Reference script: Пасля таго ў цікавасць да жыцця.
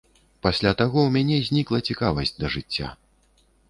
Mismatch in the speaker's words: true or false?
true